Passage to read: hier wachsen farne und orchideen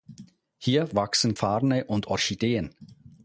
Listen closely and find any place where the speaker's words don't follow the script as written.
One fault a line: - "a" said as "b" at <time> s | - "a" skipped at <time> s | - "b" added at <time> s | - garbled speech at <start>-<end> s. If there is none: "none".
none